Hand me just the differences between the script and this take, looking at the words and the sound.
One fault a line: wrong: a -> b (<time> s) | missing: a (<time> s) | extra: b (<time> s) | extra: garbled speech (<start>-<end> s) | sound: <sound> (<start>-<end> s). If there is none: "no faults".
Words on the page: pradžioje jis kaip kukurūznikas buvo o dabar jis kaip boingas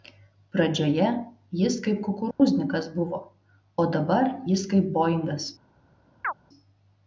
sound: dropout (2.3-2.4 s)
sound: chirp (6.2-6.3 s)